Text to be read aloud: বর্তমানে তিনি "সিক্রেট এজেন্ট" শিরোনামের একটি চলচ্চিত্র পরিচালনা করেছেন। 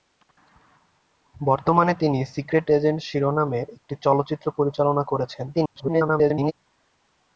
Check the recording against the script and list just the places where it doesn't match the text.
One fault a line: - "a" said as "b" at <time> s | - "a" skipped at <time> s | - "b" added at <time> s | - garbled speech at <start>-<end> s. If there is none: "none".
- garbled speech at 5.5-6.5 s